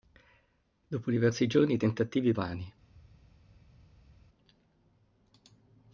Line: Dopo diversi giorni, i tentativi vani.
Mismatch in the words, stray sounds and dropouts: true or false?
false